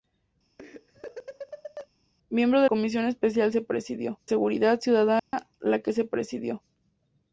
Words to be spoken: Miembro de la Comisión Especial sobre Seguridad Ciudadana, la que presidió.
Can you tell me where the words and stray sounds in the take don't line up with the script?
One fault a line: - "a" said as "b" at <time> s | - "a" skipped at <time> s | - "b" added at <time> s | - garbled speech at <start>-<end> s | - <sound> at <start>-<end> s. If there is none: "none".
- laugh at 0.6-1.9 s
- "la" skipped at 2.7 s
- "sobre" said as "presidió" at 3.6 s
- dropout at 5.2-5.3 s